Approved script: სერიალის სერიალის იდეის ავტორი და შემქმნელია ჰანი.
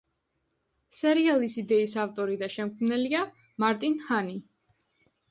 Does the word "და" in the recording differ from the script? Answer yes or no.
no